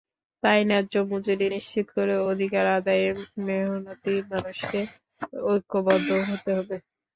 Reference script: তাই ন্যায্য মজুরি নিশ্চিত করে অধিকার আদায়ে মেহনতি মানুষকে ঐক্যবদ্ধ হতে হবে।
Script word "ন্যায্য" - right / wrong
right